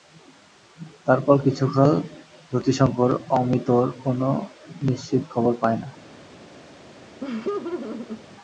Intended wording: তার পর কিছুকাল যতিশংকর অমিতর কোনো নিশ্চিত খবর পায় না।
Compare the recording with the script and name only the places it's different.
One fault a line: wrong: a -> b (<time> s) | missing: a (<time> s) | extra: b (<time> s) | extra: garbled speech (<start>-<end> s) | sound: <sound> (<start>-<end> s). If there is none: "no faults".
sound: laugh (7.2-8.2 s)